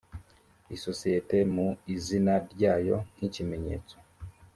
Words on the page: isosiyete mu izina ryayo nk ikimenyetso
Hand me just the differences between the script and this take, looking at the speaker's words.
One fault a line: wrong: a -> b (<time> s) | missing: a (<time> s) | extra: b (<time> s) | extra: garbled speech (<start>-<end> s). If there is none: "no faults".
no faults